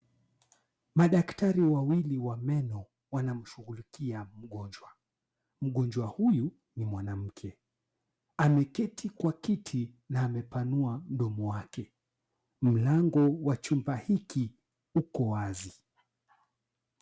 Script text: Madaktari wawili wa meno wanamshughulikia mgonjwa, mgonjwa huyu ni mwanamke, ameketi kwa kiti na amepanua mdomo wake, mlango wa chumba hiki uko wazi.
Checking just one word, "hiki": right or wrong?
right